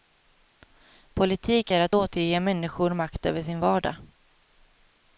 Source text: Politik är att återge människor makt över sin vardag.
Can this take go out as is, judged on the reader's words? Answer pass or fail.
pass